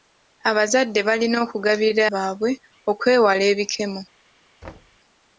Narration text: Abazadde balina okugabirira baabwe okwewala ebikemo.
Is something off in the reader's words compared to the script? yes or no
no